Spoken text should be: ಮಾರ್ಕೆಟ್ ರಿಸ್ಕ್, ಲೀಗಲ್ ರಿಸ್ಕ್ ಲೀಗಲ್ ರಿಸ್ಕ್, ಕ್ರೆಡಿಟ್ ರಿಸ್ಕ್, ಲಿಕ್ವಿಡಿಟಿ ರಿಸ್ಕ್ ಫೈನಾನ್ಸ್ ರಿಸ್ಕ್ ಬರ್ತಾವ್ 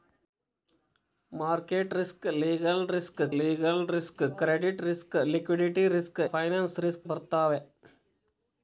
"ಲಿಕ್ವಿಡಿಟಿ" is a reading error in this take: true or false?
false